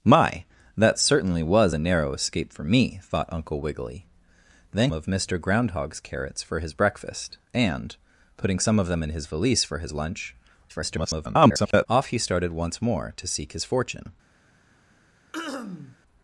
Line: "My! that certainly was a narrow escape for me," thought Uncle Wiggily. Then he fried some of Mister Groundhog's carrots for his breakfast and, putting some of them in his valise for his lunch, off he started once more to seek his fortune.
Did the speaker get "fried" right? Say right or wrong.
wrong